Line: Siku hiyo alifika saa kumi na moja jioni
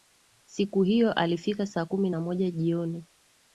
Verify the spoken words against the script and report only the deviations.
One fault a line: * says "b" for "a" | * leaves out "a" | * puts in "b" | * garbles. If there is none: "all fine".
all fine